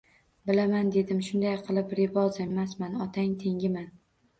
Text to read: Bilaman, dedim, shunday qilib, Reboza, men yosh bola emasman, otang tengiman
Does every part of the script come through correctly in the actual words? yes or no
no